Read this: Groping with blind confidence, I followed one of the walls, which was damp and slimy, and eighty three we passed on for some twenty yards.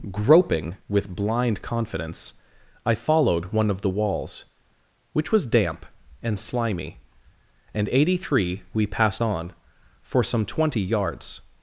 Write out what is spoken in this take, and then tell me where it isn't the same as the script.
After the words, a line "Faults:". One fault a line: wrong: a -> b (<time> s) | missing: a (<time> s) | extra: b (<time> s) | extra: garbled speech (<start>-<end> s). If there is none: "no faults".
Groping with blind confidence, I followed one of the walls, which was damp and slimy, and eighty three we passed on for some twenty yards.
Faults:
no faults